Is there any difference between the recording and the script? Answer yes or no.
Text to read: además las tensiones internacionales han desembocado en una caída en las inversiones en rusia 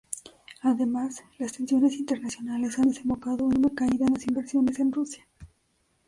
no